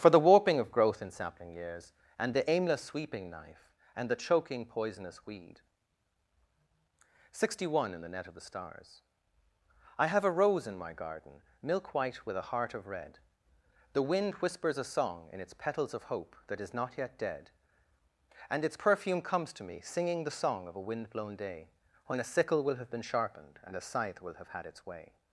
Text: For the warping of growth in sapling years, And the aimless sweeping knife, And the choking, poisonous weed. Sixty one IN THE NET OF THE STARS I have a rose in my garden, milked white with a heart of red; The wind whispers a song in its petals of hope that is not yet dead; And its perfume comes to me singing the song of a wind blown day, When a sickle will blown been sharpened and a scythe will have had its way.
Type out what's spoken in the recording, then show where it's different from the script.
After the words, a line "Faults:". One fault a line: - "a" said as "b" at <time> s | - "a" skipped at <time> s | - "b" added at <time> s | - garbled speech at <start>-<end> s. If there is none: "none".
For the warping of growth in sapling years, And the aimless sweeping knife, And the choking, poisonous weed. Sixty one IN THE NET OF THE STARS I have a rose in my garden, milk white with a heart of red; The wind whispers a song in its petals of hope that is not yet dead; And its perfume comes to me singing the song of a wind blown day, When a sickle will have been sharpened and a scythe will have had its way.
Faults:
- "milked" said as "milk" at 11.6 s
- "blown" said as "have" at 22.8 s